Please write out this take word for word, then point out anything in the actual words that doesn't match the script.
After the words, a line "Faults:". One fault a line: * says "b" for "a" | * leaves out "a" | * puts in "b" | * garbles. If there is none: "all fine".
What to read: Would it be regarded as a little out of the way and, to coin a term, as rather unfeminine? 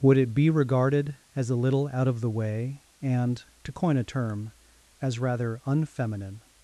Would it be regarded as a little out of the way and, to coin a term, as rather unfeminine?
Faults:
all fine